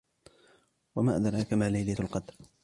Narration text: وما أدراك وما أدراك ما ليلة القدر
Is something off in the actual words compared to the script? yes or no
yes